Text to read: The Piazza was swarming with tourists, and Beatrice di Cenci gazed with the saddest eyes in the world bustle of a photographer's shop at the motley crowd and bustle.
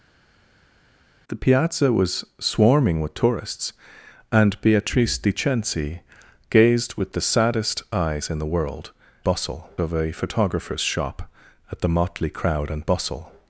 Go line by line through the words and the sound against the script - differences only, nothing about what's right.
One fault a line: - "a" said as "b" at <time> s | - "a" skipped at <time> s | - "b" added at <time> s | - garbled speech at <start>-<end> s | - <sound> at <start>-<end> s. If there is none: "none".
none